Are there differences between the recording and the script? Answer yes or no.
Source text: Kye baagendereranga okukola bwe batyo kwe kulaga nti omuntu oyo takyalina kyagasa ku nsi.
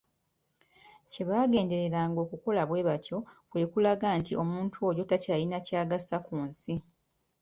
no